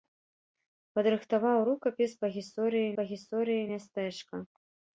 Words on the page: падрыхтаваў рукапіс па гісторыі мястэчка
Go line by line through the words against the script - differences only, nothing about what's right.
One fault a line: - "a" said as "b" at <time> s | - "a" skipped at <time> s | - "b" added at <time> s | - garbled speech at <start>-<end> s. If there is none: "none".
- "па гісторыі" added at 3.0 s